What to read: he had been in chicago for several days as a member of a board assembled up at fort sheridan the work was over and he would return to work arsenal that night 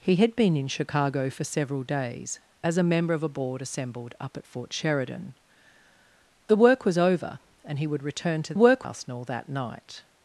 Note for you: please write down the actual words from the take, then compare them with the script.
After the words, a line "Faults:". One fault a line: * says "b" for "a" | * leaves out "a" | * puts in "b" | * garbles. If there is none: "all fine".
he had been in chicago for several days as a member of a board assembled up at fort sheridan the work was over and he would return to work arsenal that night
Faults:
all fine